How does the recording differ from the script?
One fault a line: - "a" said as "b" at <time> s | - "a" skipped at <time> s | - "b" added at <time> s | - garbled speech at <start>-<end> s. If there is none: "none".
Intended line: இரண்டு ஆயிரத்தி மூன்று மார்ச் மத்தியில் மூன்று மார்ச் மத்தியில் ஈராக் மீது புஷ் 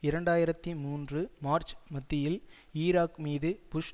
- "மூன்று மார்ச் மத்தியில்" skipped at 2.4 s